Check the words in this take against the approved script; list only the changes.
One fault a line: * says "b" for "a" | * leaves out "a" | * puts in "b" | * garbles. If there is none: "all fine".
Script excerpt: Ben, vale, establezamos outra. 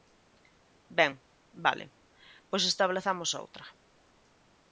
* puts in "pois"